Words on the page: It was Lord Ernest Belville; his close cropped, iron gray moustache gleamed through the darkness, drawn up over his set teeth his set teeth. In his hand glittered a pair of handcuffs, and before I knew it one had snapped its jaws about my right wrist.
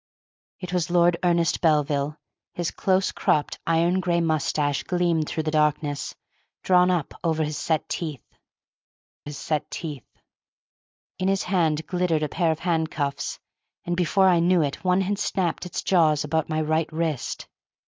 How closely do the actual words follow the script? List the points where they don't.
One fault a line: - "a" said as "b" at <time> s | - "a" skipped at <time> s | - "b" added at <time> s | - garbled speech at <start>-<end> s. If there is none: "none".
none